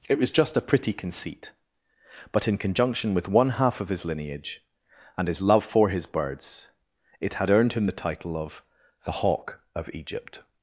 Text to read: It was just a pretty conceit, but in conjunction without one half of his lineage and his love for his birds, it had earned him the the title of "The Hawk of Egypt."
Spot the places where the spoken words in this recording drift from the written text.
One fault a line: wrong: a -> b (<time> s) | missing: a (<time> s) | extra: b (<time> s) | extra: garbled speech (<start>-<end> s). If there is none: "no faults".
wrong: without -> with (3.1 s)
missing: the (8.0 s)